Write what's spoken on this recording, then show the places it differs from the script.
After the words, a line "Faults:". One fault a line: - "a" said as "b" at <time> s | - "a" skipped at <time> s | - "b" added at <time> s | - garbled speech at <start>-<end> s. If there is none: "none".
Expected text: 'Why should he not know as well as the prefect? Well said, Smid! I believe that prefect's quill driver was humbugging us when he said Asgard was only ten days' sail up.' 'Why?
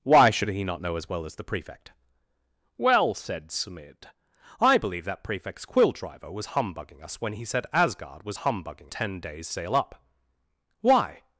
'Why should he not know as well as the prefect? Well said, Smid! I believe that prefect's quill driver was humbugging us when he said Asgard was humbugging ten days' sail up.' 'Why?
Faults:
- "only" said as "humbugging" at 8.4 s